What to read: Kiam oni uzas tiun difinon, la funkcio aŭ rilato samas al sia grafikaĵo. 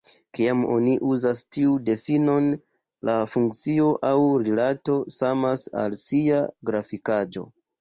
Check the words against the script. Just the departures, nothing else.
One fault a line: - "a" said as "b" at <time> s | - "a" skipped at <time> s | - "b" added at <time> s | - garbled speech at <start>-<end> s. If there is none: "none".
none